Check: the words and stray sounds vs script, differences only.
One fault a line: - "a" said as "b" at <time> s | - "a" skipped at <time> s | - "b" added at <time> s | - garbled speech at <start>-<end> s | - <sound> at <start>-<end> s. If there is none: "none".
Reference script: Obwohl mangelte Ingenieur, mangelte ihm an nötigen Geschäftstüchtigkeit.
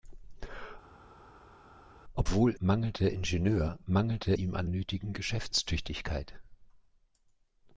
none